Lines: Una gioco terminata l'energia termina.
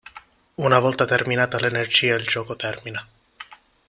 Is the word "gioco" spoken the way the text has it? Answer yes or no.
no